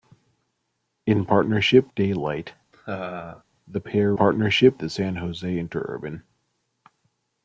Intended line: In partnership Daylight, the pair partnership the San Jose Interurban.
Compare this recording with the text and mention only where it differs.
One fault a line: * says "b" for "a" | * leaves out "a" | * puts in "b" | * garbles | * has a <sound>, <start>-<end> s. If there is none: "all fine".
* has a laugh, 2.7-3.4 s